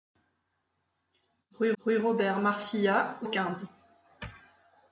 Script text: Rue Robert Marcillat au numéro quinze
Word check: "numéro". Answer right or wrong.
wrong